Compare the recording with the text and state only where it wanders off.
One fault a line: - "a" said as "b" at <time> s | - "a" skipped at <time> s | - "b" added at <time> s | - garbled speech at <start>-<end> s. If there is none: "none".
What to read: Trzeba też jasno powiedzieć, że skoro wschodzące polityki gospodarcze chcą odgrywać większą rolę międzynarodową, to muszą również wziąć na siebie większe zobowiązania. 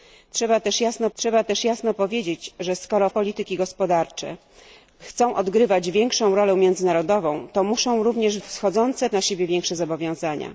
- "trzeba też jasno" added at 1.1 s
- "wschodzące" skipped at 3.1 s
- "wziąć" said as "wschodzące" at 8.4 s